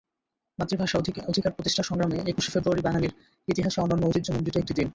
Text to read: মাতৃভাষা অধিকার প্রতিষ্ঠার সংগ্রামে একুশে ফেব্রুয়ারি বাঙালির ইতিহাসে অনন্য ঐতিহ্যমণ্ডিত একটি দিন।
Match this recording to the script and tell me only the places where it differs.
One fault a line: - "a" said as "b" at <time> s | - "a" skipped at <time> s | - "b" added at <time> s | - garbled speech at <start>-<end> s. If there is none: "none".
none